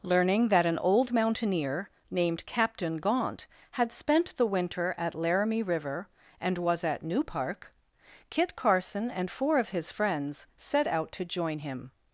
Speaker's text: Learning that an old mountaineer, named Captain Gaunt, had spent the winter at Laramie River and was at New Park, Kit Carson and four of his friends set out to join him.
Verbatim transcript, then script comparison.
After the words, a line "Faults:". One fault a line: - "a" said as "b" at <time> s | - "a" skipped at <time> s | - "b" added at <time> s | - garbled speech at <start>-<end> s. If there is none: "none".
Learning that an old mountaineer, named Captain Gaunt, had spent the winter at Laramie River and was at New Park, Kit Carson and four of his friends set out to join him.
Faults:
none